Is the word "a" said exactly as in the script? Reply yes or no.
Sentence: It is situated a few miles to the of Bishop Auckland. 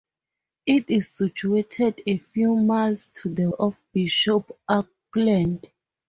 yes